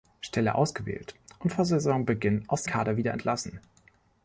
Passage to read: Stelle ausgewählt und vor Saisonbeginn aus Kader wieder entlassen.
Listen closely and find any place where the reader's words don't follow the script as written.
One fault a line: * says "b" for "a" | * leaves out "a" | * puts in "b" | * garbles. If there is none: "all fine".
all fine